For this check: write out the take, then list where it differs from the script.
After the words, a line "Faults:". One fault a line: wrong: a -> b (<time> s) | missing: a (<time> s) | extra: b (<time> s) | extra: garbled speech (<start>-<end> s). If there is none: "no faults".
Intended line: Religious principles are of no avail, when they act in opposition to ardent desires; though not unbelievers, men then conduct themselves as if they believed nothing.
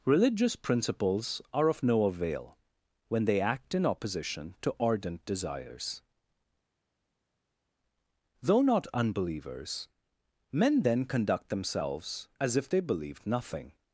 Religious principles are of no avail, when they act in opposition to ardent desires; though not unbelievers, men then conduct themselves as if they believed nothing.
Faults:
no faults